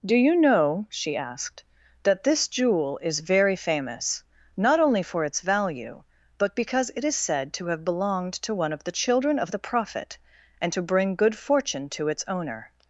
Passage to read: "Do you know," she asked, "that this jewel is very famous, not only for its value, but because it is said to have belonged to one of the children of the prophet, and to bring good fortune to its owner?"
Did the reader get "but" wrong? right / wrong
right